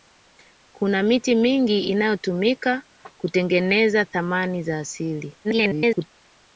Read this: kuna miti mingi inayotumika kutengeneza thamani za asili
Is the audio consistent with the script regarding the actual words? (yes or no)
no